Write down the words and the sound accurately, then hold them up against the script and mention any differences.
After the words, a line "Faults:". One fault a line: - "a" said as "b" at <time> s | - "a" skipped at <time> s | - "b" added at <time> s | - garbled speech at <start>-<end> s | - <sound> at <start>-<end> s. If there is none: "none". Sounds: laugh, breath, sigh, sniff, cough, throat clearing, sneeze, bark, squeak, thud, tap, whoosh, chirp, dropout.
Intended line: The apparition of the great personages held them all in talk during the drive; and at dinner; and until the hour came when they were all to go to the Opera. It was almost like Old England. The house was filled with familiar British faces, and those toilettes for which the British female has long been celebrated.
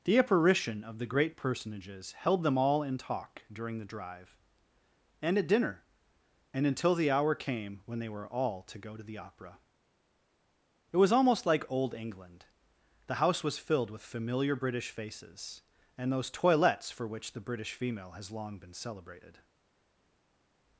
The apparition of the great personages held them all in talk during the drive; and at dinner; and until the hour came when they were all to go to the Opera. It was almost like Old England. The house was filled with familiar British faces, and those toilettes for which the British female has long been celebrated.
Faults:
none